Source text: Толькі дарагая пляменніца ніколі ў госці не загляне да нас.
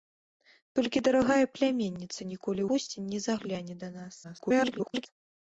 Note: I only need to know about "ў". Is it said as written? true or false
false